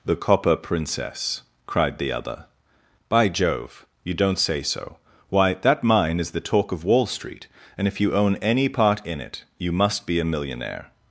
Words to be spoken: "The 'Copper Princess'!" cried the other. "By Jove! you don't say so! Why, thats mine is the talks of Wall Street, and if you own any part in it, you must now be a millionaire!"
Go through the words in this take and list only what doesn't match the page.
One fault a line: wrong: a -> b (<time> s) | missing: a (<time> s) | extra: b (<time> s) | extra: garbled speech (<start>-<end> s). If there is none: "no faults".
wrong: thats -> that (5.5 s)
wrong: talks -> talk (6.4 s)
missing: now (10.1 s)